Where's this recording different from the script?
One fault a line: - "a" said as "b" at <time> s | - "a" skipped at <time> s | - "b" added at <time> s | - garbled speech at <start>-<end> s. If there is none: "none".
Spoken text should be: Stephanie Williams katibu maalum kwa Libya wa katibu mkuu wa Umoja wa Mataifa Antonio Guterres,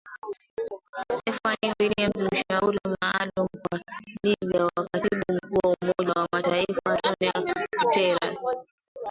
- "katibu" said as "mshauri" at 2.3 s